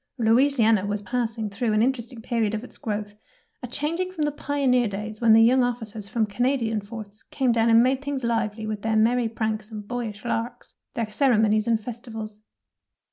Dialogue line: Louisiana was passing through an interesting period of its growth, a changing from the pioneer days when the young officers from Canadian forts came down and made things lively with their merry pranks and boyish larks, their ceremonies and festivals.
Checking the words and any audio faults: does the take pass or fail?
pass